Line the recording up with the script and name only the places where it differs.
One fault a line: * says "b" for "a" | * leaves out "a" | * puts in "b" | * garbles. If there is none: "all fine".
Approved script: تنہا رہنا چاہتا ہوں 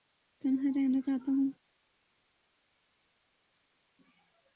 all fine